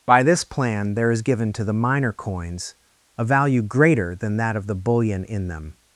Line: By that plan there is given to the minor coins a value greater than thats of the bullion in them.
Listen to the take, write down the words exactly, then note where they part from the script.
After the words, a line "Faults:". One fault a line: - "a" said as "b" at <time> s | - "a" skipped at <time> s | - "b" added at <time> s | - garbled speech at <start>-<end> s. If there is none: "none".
By this plan there is given to the minor coins a value greater than that of the bullion in them.
Faults:
- "that" said as "this" at 0.2 s
- "thats" said as "that" at 4.4 s